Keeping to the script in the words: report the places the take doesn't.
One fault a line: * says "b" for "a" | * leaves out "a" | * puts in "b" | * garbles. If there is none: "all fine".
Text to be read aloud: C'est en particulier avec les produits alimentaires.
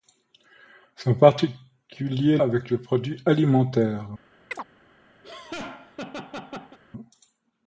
all fine